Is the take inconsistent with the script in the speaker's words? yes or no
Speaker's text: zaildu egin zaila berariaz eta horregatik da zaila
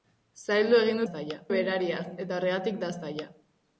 no